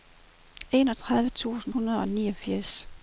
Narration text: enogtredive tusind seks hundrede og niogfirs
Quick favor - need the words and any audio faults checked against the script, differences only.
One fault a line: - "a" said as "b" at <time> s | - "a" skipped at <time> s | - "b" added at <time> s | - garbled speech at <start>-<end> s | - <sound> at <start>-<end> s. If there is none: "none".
- "seks" skipped at 1.7 s